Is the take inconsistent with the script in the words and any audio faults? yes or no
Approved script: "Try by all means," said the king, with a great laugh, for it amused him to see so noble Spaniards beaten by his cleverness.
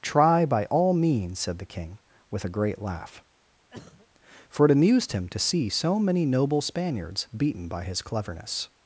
yes